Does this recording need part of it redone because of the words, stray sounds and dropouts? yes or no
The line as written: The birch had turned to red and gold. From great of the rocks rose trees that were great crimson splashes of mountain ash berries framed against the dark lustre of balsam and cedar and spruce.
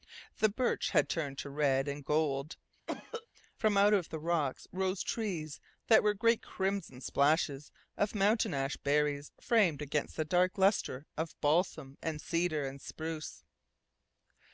yes